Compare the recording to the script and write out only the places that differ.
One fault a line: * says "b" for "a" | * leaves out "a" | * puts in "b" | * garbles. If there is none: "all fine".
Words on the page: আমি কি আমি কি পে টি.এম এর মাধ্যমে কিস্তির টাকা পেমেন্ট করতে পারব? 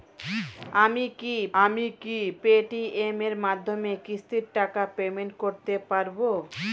all fine